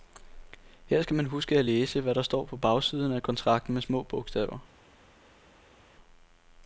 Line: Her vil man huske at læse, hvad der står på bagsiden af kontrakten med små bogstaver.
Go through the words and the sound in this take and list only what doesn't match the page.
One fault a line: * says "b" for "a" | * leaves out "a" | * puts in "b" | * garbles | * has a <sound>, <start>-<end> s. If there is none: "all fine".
* says "skal" for "vil"